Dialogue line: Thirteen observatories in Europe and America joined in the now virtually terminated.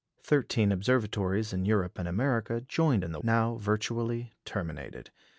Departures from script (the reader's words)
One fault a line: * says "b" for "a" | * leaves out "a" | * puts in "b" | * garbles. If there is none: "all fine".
all fine